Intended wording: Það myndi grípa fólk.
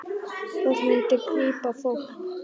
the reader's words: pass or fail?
pass